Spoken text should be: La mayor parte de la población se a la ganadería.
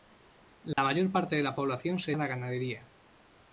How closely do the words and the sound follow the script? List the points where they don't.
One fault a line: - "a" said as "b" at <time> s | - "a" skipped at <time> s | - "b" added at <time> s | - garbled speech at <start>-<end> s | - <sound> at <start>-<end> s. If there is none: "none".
- dropout at 0.7-0.8 s